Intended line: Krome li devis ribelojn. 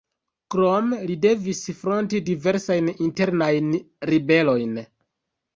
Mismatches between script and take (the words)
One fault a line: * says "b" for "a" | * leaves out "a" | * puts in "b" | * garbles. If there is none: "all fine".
* puts in "fronti diversajn internajn"